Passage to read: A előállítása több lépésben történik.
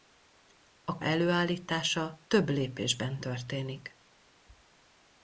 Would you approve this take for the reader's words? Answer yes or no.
yes